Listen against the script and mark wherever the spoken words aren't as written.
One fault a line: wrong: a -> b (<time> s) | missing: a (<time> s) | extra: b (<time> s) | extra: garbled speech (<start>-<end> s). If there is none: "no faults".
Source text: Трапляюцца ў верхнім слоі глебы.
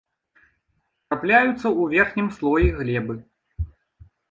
no faults